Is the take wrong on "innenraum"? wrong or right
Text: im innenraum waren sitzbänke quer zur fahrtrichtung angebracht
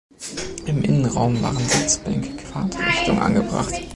right